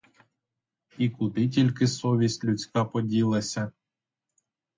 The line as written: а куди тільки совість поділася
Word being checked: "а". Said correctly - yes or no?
no